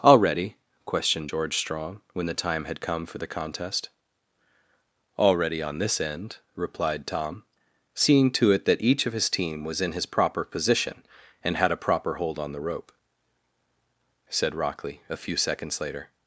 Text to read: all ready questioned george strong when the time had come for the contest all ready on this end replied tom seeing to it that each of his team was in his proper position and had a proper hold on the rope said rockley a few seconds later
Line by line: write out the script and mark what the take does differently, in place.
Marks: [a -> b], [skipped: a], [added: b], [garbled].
all ready questioned george strong when the time had come for the contest all ready on this end replied tom seeing to it that each of his team was in his proper position and had a proper hold on the rope said rockley a few seconds later